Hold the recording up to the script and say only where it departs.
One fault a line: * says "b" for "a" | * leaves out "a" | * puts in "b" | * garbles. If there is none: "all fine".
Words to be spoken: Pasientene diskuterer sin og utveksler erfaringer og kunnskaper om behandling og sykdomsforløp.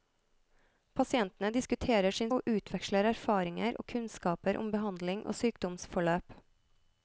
all fine